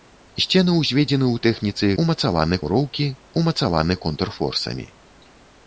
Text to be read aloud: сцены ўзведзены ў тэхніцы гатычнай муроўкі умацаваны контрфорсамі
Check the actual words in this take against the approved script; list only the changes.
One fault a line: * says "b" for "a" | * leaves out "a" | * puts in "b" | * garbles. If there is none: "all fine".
* says "умацаваны" for "гатычнай"